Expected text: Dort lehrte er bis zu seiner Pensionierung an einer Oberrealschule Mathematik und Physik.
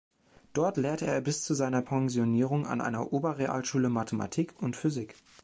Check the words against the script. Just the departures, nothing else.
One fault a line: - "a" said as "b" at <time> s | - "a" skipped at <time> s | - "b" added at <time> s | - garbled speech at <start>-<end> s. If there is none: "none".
none